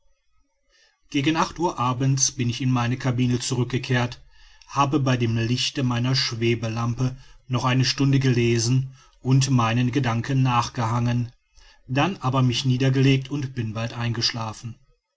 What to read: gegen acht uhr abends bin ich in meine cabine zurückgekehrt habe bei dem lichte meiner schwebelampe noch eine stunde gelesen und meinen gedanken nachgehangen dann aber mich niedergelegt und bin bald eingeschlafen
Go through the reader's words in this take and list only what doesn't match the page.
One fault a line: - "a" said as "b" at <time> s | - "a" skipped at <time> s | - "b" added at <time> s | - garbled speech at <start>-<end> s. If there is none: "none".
none